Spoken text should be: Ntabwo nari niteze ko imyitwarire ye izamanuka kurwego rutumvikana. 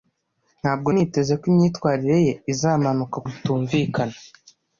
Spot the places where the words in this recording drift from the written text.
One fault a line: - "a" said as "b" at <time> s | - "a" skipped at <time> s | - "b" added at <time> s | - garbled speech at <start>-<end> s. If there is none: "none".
- "nari" skipped at 0.9 s
- "kurwego" skipped at 3.2 s